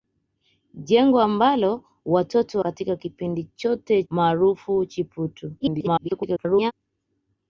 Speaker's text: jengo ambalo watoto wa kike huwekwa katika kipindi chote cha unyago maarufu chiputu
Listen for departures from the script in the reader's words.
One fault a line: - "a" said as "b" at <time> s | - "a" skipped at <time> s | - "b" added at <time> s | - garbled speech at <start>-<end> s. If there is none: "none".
- "wa kike huwekwa" skipped at 2.6 s
- "cha unyago" skipped at 4.0 s
- garbled speech at 5.6-6.7 s